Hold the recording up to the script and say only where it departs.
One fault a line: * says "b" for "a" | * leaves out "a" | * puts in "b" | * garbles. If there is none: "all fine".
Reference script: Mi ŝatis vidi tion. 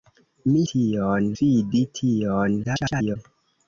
* says "tion" for "ŝatis"
* garbles